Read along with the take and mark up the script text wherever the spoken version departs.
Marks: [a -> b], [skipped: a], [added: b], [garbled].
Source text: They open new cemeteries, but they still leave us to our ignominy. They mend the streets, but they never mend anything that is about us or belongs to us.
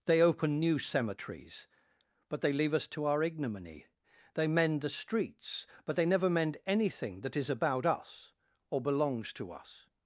They open new cemeteries, but they [skipped: still] leave us to our ignominy. They mend the streets, but they never mend anything that is about us or belongs to us.